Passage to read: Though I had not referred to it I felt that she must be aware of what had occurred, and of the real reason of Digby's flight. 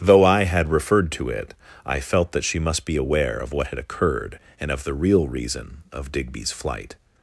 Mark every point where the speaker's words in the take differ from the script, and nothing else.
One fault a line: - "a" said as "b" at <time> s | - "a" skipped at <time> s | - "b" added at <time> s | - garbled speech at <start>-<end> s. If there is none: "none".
- "not" skipped at 0.7 s